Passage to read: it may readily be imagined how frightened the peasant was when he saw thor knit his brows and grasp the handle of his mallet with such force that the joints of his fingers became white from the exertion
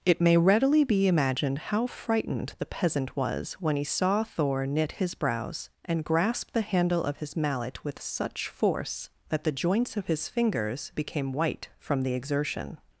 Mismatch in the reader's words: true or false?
false